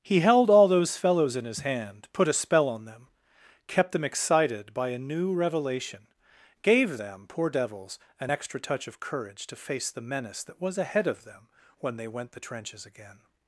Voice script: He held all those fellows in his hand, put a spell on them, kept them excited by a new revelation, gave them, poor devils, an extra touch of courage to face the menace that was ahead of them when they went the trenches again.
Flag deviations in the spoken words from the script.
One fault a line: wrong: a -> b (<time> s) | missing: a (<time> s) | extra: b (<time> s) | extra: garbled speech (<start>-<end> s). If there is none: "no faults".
no faults